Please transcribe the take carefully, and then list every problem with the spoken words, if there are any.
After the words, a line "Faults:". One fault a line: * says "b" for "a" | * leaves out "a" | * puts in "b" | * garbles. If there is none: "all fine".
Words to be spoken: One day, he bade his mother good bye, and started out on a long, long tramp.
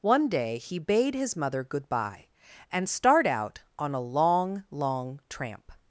One day, he bade his mother good bye, and start out on a long, long tramp.
Faults:
* says "start" for "started"